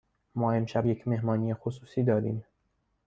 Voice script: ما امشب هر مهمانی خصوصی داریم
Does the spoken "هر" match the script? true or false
false